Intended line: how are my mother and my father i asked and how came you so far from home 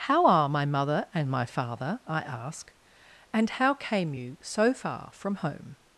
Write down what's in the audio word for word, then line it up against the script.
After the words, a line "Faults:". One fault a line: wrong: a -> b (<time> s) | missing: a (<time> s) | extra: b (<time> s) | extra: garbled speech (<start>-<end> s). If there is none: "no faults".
how are my mother and my father i ask and how came you so far from home
Faults:
wrong: asked -> ask (2.2 s)